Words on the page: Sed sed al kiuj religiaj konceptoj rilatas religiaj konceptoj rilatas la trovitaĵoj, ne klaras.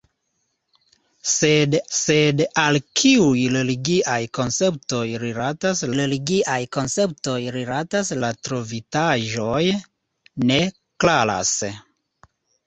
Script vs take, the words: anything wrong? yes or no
no